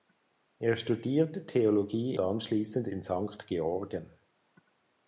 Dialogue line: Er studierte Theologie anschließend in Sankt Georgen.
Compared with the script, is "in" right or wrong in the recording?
right